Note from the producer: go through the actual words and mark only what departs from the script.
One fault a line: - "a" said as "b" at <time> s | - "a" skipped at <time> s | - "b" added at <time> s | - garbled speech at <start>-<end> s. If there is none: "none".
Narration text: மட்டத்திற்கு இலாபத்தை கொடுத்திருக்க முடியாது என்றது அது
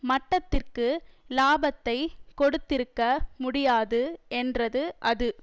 none